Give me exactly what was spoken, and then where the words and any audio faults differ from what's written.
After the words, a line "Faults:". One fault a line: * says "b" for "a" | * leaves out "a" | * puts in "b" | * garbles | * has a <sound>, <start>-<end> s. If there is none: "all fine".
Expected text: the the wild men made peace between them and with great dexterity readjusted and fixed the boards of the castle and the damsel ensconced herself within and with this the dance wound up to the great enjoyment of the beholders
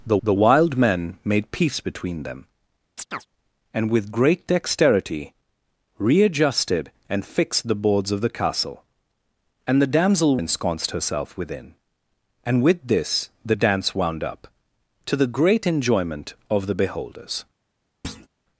the the wild men made peace between them and with great dexterity readjusted and fixed the boards of the castle and the damsel ensconced herself within and with this the dance wound up to the great enjoyment of the beholders
Faults:
* has a chirp, 3.0-3.3 s
* has a thud, 18.0-18.3 s